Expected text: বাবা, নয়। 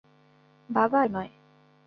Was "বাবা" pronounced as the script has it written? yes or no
yes